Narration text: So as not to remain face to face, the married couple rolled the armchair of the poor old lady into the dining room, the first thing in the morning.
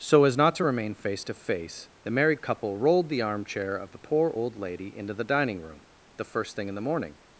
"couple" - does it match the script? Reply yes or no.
yes